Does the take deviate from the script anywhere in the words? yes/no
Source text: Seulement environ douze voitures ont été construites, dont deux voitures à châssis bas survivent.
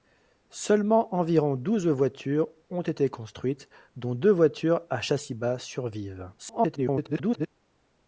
yes